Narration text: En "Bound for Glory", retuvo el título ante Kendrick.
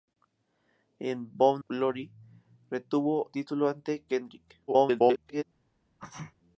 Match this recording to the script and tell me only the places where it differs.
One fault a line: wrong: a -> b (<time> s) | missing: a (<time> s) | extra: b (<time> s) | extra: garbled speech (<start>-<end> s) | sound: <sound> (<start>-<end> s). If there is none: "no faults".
missing: for (1.6 s)
missing: el (3.3 s)
extra: garbled speech (4.7-5.4 s)
sound: sneeze (6.0-6.3 s)